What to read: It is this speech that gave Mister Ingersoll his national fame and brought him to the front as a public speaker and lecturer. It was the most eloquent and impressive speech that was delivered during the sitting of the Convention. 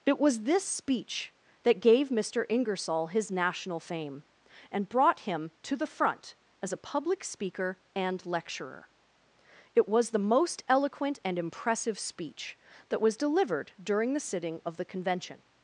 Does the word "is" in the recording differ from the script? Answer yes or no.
yes